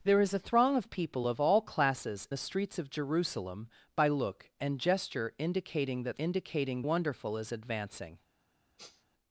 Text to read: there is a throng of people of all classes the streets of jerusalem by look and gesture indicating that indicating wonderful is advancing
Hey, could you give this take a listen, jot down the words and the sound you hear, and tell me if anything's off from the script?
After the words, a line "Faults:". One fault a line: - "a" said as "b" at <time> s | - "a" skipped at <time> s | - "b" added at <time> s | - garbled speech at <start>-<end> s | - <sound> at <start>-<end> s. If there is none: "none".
there is a throng of people of all classes the streets of jerusalem by look and gesture indicating that indicating wonderful is advancing
Faults:
- sniff at 8.8-9.1 s